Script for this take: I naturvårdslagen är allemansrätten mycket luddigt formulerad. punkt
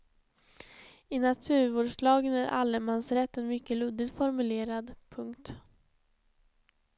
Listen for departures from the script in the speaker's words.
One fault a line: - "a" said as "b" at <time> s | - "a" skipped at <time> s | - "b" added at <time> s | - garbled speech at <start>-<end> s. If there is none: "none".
none